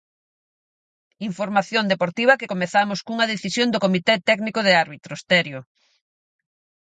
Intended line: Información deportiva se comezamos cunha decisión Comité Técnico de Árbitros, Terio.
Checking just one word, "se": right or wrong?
wrong